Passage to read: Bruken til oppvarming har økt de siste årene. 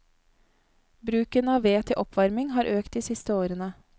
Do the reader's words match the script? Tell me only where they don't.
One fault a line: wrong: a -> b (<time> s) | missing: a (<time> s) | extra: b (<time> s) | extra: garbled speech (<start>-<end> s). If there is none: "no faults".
extra: av ved (1.5 s)